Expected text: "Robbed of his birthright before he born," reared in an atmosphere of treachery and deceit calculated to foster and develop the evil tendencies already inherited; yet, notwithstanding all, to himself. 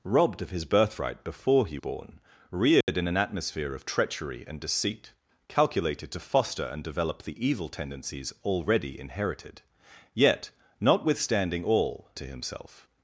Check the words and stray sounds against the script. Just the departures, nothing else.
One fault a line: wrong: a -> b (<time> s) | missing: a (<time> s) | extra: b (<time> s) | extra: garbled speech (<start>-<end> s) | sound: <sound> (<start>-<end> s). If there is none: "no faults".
sound: dropout (2.8-2.9 s)